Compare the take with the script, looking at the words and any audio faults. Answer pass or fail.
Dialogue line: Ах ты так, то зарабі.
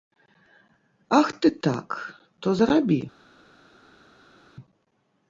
pass